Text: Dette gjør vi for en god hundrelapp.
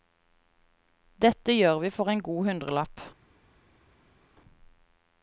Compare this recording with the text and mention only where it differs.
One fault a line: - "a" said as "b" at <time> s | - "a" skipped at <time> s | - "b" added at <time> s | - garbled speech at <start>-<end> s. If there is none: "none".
none